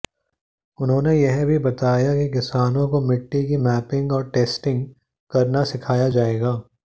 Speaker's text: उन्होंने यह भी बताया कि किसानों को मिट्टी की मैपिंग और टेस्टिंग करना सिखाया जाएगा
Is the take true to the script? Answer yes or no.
yes